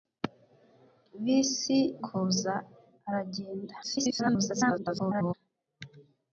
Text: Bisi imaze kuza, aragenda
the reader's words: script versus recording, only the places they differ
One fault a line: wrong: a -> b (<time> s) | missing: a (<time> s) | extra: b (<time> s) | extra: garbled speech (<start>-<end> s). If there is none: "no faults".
missing: imaze (1.8 s)
extra: garbled speech (3.8-5.3 s)